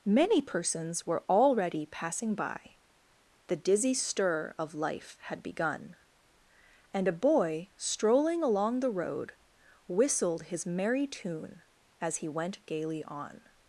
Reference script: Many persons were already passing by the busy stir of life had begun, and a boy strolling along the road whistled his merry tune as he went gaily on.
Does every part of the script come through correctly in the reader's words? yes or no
no